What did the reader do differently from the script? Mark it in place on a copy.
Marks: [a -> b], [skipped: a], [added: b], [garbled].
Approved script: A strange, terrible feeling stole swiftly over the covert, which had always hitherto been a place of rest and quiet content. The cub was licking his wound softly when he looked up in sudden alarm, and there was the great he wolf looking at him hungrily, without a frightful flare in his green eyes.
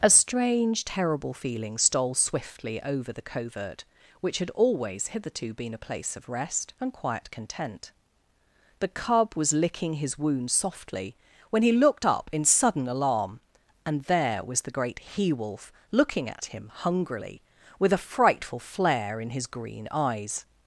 A strange, terrible feeling stole swiftly over the covert, which had always hitherto been a place of rest and quiet content. The cub was licking his wound softly when he looked up in sudden alarm, and there was the great he wolf looking at him hungrily, [without -> with] a frightful flare in his green eyes.